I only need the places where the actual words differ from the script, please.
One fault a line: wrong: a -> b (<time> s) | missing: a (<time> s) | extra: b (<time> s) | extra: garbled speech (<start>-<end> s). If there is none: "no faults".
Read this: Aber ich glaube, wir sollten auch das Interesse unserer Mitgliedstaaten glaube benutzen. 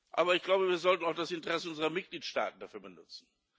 wrong: glaube -> dafür (2.6 s)